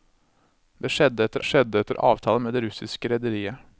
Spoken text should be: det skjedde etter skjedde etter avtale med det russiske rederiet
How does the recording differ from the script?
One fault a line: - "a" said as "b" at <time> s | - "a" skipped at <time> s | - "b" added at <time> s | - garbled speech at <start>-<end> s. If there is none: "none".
none